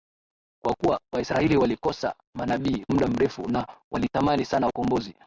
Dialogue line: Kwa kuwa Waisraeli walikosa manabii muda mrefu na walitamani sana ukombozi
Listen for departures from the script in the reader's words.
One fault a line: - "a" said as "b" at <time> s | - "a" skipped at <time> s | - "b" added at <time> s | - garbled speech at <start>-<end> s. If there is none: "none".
none